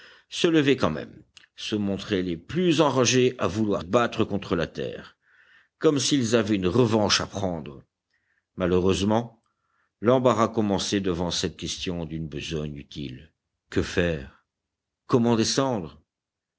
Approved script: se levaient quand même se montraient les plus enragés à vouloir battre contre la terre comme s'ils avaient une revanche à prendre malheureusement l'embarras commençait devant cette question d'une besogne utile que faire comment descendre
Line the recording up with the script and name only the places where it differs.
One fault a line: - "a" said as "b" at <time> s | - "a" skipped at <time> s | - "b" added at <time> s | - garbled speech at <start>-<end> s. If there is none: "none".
none